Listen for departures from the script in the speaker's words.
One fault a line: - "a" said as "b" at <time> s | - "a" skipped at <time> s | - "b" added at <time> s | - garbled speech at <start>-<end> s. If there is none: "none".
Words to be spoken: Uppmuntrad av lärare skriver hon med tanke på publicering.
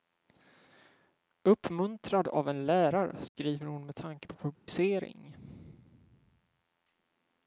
- "en" added at 2.5 s